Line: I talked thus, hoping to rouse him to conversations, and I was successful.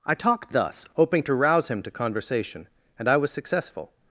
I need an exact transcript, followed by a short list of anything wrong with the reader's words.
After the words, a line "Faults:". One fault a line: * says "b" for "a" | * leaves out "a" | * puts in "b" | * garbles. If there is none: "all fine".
I talked thus, hoping to rouse him to conversation, and I was successful.
Faults:
* says "conversation" for "conversations"